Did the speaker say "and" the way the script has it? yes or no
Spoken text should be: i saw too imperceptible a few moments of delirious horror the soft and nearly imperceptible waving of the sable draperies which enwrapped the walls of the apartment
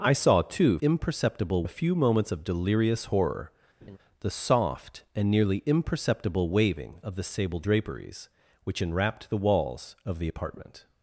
yes